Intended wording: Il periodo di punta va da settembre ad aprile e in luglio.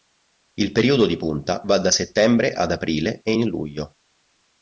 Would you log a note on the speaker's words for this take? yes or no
no